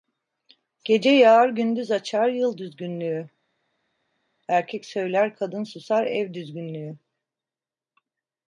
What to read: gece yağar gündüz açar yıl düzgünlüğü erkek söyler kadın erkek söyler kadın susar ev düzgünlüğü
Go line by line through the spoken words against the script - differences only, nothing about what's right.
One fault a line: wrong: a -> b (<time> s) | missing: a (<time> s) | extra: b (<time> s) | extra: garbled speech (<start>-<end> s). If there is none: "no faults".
missing: erkek söyler kadın (5.6 s)